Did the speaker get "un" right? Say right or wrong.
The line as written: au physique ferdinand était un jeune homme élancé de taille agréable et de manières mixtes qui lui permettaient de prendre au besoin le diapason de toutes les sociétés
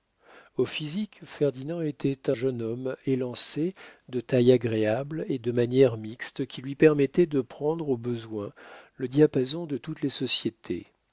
wrong